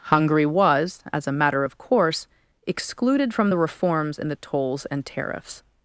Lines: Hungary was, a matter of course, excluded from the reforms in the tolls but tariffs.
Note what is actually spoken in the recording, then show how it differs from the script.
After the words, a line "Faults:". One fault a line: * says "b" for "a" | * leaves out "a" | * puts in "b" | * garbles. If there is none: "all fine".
Hungary was, as a matter of course, excluded from the reforms in the tolls and tariffs.
Faults:
* puts in "as"
* says "and" for "but"